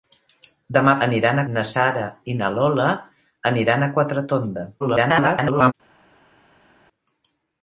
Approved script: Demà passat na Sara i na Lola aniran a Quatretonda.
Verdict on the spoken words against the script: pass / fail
fail